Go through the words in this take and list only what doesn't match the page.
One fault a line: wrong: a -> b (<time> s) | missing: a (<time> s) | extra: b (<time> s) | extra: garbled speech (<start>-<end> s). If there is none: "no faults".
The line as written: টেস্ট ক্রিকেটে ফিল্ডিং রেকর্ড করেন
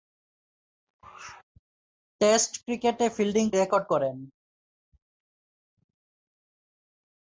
no faults